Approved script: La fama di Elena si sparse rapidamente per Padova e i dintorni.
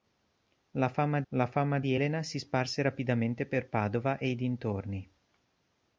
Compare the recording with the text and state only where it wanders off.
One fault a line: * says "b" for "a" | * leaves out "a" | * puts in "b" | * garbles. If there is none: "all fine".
* puts in "la fama"